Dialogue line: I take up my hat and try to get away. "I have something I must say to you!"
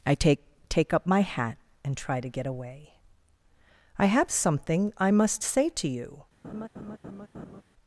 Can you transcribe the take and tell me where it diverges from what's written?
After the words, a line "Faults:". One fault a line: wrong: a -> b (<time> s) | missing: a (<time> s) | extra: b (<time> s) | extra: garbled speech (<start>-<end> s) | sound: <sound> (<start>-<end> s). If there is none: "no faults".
I take take up my hat and try to get away. "I have something I must say to you!"
Faults:
extra: take (0.7 s)
sound: laugh (6.4-7.6 s)